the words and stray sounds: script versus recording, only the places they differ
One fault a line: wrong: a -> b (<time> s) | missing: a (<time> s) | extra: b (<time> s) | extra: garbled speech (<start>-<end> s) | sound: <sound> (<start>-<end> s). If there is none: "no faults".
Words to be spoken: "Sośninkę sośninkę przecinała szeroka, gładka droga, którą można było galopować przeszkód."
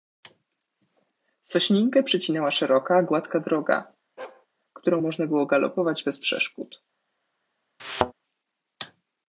missing: sośninkę (2.0 s)
sound: bark (4.2-4.5 s)
extra: bez (6.0 s)
sound: thud (7.8-8.1 s)